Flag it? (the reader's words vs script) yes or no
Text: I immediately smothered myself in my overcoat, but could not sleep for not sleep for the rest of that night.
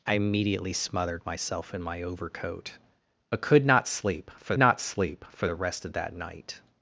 no